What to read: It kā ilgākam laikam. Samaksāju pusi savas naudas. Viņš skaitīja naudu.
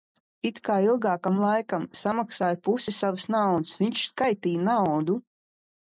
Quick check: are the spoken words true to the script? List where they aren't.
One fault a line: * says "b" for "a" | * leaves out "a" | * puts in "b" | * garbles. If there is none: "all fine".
all fine